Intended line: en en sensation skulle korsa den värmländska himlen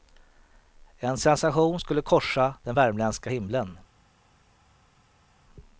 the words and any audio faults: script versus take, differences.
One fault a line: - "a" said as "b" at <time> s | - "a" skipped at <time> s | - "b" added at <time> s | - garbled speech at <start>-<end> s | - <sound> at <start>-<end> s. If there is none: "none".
- "en" skipped at 1.2 s